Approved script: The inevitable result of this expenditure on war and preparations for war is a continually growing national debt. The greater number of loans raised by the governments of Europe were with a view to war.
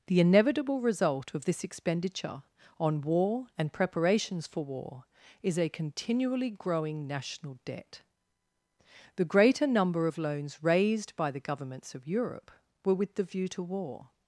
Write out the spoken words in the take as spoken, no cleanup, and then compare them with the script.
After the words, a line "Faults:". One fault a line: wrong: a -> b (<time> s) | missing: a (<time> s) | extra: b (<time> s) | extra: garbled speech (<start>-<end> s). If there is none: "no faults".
The inevitable result of this expenditure on war and preparations for war is a continually growing national debt. The greater number of loans raised by the governments of Europe were with the view to war.
Faults:
wrong: a -> the (13.1 s)